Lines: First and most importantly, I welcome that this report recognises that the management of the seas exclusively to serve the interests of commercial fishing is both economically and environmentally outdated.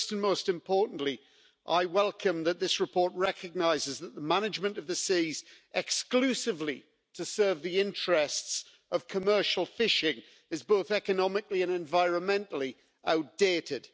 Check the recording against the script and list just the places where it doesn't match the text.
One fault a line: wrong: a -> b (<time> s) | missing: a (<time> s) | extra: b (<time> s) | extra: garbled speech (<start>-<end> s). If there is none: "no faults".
no faults